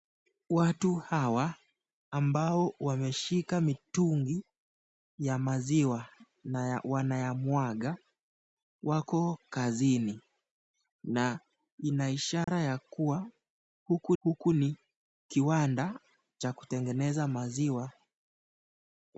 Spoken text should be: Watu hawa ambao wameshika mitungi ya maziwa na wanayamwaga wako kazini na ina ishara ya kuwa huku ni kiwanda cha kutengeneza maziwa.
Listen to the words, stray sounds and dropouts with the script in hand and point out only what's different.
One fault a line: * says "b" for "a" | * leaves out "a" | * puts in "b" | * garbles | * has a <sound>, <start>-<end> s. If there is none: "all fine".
* has a dropout, 12.4-12.5 s
* puts in "huku"